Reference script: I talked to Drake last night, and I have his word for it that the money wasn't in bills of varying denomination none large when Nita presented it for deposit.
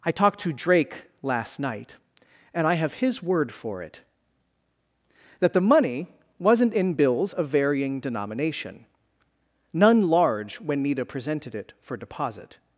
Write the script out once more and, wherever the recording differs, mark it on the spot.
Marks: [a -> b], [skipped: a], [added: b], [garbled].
I talked to Drake last night, and I have his word for it that the money wasn't in bills of varying denomination none large when Nita presented it for deposit.